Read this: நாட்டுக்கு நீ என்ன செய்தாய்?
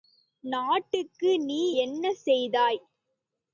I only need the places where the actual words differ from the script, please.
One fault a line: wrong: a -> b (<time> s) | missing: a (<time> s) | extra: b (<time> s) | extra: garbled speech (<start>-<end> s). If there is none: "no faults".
no faults